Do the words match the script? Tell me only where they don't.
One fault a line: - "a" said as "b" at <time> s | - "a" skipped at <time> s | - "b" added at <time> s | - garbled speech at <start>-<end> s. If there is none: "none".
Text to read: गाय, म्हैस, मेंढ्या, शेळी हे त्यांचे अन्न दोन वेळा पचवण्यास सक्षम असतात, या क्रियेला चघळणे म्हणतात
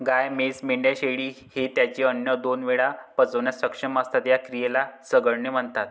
none